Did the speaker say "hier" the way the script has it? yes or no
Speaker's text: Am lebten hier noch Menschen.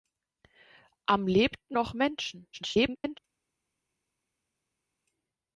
no